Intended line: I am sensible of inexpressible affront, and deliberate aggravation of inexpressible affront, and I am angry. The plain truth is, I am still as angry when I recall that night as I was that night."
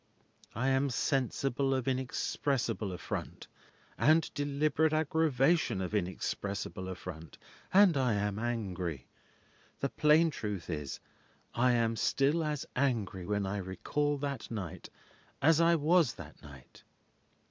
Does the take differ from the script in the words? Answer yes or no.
no